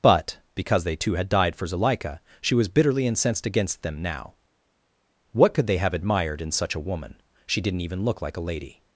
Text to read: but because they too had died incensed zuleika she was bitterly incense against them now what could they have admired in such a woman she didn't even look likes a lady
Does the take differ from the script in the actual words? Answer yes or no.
yes